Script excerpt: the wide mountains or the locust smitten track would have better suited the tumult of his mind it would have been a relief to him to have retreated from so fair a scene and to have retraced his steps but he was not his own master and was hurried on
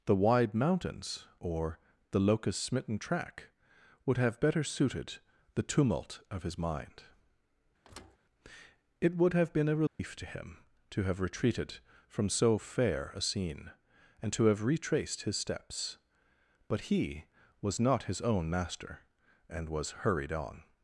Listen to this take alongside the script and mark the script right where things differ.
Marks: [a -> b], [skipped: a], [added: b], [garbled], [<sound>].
the wide mountains or the locust smitten track would have better suited the tumult of his mind [thud] it would have been a relief [dropout] to him to have retreated from so fair a scene and to have retraced his steps but he was not his own master and was hurried on